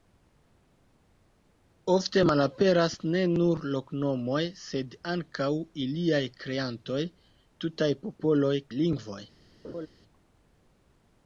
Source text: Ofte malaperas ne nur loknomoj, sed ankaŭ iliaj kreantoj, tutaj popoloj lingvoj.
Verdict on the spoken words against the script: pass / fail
pass